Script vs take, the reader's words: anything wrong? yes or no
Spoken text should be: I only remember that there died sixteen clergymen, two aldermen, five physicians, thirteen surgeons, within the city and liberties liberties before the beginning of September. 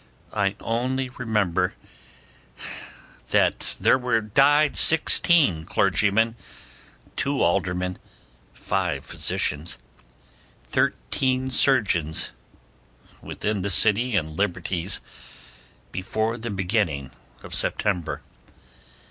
yes